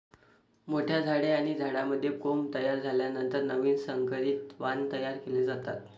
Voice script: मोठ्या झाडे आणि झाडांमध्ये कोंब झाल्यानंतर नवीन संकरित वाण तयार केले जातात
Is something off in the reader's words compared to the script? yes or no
yes